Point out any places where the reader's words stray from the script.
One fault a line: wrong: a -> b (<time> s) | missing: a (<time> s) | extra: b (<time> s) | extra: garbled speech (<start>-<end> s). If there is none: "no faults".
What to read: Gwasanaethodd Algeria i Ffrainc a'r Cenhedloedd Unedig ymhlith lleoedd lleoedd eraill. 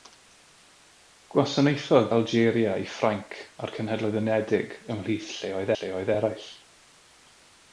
no faults